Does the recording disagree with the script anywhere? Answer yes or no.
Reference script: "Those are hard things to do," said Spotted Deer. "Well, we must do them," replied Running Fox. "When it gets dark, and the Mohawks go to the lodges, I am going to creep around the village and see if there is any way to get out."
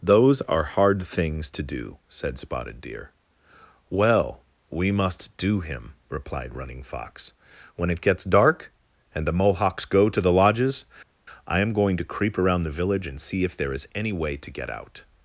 yes